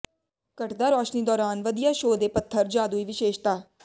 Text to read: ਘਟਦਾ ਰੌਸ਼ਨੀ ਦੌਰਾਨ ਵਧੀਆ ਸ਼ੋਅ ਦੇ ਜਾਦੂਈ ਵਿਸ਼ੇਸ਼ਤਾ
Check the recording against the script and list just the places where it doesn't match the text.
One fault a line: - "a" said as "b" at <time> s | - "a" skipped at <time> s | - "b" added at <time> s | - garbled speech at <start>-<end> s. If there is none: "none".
- "ਪੱਥਰ" added at 2.3 s